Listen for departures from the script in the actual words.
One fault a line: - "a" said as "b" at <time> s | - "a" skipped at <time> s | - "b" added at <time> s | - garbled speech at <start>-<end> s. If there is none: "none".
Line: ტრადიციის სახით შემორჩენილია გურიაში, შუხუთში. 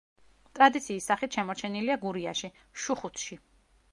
none